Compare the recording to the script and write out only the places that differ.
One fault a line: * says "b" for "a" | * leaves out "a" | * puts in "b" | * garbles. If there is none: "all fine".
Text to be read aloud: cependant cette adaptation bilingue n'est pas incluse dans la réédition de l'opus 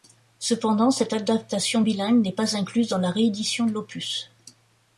all fine